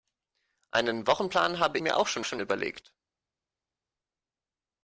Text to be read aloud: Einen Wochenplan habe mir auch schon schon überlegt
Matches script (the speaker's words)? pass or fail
pass